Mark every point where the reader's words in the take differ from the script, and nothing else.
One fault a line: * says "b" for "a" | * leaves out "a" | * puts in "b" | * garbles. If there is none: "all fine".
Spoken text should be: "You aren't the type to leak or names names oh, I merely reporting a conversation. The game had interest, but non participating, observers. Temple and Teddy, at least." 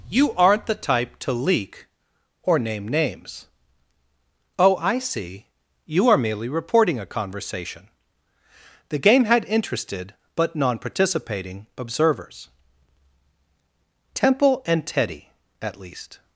* says "name" for "names"
* puts in "see You are"
* says "interested" for "interest"